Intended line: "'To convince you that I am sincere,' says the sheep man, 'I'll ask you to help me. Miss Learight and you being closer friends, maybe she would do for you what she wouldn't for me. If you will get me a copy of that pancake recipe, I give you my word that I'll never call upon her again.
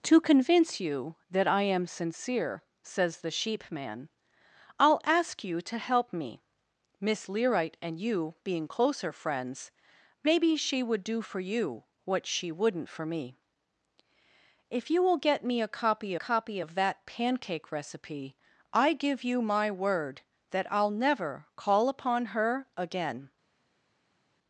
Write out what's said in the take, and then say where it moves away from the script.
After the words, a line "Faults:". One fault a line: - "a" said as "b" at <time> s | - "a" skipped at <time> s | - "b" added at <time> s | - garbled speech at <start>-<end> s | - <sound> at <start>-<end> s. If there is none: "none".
"'To convince you that I am sincere,' says the sheep man, 'I'll ask you to help me. Miss Learight and you being closer friends, maybe she would do for you what she wouldn't for me. If you will get me a copy copy of that pancake recipe, I give you my word that I'll never call upon her again.
Faults:
- "copy" added at 16.1 s